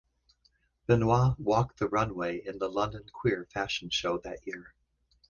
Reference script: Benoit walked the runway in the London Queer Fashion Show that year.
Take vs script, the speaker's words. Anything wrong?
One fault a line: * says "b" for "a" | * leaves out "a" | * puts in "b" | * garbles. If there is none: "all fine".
all fine